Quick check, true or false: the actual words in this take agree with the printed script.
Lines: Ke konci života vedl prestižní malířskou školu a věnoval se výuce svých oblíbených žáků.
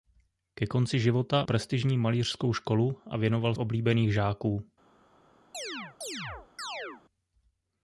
false